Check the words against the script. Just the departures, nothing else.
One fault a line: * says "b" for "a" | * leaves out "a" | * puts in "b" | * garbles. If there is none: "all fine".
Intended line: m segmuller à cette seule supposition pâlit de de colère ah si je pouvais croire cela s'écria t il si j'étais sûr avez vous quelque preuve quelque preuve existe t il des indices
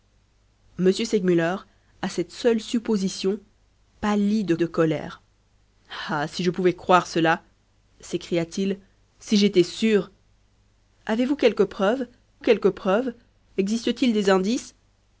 all fine